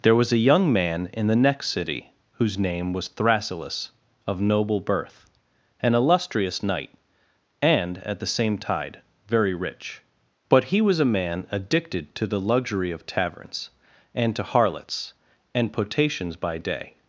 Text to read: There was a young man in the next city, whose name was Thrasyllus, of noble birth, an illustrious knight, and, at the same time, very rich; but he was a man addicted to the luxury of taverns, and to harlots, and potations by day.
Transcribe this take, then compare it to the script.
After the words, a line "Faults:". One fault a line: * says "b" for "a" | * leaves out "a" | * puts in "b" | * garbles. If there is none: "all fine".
There was a young man in the next city, whose name was Thrasyllus, of noble birth, an illustrious knight, and, at the same tide, very rich; but he was a man addicted to the luxury of taverns, and to harlots, and potations by day.
Faults:
* says "tide" for "time"